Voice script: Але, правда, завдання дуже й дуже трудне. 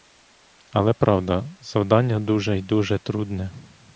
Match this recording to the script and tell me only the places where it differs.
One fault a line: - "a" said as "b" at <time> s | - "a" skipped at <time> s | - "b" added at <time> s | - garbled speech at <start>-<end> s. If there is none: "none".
none